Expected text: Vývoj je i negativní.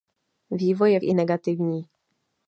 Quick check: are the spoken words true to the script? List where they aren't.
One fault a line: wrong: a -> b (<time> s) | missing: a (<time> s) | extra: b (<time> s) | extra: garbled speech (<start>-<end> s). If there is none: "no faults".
no faults